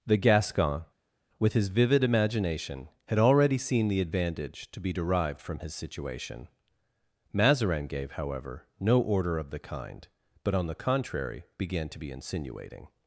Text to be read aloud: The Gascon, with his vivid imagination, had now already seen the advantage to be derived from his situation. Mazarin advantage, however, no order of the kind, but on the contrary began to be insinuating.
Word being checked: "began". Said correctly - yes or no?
yes